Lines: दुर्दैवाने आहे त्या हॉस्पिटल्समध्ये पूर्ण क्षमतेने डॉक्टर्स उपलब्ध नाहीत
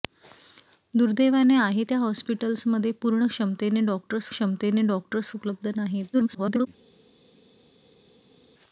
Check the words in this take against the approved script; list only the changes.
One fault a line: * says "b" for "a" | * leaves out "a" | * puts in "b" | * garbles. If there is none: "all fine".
* puts in "क्षमतेने डॉक्टर्स"
* garbles